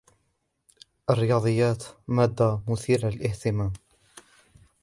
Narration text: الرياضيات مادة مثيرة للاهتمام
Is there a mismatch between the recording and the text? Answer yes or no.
no